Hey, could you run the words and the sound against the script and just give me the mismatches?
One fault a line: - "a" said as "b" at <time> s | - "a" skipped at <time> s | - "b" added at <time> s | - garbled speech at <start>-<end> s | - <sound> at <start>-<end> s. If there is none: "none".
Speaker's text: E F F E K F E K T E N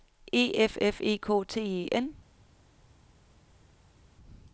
- "F E K" skipped at 1.4 s